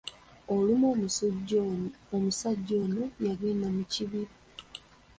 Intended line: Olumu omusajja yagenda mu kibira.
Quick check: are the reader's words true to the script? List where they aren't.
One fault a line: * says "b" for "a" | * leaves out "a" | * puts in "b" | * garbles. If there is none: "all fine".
* puts in "ono"